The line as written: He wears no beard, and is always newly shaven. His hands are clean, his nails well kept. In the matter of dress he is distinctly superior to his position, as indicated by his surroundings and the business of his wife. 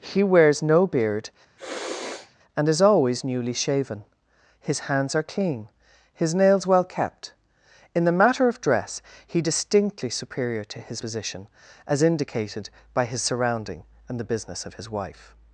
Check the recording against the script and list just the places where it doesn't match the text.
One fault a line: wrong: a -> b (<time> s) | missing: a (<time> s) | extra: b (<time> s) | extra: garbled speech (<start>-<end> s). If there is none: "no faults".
missing: is (9.4 s)
wrong: surroundings -> surrounding (13.2 s)